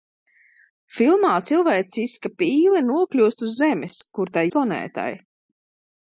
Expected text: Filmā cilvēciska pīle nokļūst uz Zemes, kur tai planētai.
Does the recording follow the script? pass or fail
pass